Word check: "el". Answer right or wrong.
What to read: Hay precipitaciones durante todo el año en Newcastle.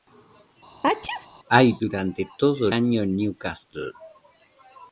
wrong